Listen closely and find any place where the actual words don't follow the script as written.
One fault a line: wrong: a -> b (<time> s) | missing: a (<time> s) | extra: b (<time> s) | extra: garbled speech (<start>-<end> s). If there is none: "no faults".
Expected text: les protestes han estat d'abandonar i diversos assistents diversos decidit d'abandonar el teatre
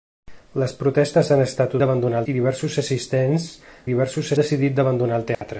no faults